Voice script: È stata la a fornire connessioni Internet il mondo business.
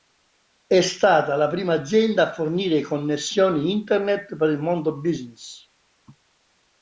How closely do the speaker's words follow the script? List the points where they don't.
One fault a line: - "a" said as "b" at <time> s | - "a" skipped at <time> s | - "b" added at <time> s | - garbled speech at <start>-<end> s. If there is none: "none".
- "prima azienda" added at 1.5 s
- "per" added at 4.3 s